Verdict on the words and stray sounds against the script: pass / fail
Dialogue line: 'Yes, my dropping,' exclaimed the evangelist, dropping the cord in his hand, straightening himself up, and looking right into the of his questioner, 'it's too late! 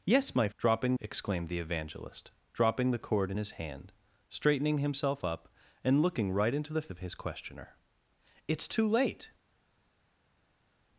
pass